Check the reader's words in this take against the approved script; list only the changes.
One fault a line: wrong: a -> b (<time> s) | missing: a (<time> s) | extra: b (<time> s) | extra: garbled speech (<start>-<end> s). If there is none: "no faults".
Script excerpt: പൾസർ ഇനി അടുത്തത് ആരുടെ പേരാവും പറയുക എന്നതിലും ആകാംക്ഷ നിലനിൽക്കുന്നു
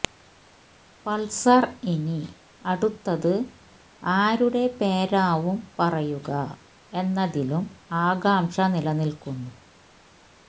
no faults